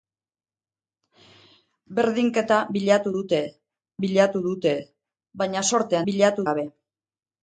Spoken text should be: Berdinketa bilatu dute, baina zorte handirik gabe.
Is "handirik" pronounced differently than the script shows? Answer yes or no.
yes